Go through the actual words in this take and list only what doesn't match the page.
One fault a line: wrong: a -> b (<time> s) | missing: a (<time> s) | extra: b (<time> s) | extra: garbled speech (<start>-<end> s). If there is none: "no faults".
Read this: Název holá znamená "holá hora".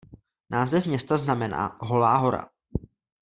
wrong: holá -> města (0.9 s)